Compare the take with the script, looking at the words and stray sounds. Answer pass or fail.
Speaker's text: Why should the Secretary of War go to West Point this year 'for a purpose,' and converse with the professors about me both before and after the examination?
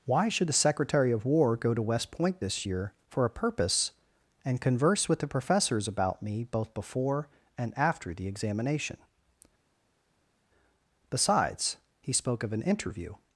fail